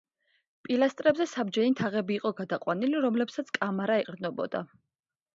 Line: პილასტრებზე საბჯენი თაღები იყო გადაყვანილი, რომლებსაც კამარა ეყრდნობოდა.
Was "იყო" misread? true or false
false